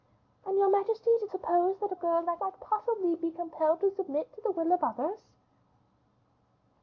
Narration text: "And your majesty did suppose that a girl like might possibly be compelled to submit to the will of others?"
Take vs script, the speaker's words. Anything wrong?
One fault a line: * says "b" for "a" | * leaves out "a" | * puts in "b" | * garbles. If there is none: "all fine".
all fine